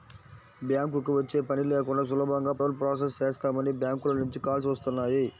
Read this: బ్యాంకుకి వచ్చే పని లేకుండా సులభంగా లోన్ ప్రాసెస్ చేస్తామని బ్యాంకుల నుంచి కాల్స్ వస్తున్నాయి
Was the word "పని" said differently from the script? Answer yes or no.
no